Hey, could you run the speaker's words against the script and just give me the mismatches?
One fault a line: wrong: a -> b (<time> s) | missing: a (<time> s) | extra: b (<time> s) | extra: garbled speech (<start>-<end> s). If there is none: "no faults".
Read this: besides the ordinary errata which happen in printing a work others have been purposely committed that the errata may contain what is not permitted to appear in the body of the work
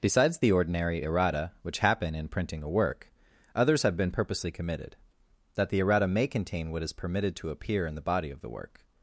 missing: not (6.9 s)